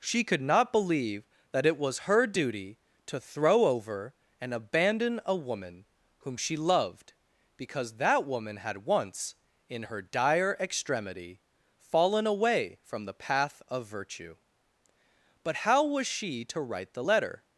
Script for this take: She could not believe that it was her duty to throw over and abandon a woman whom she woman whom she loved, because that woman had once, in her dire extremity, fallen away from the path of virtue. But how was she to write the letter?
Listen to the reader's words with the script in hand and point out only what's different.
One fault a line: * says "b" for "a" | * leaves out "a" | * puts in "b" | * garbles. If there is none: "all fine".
* leaves out "woman whom she"